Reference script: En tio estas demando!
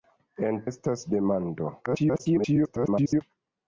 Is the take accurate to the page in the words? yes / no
no